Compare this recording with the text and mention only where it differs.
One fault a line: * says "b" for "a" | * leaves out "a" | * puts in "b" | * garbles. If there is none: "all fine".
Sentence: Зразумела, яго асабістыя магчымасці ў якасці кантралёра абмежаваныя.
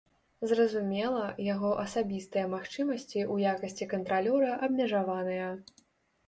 all fine